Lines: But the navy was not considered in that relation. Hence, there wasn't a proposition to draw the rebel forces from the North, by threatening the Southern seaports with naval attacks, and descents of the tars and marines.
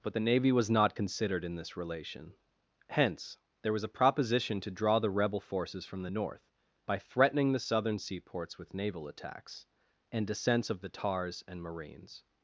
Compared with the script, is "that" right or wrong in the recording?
wrong